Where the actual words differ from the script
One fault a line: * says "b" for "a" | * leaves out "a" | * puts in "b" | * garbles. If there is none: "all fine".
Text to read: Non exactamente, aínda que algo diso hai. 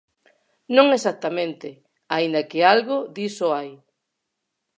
all fine